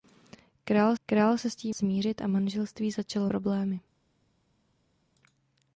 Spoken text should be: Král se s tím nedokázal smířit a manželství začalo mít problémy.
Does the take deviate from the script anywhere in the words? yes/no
yes